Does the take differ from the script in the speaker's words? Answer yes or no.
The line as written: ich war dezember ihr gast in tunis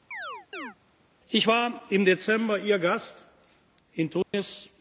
yes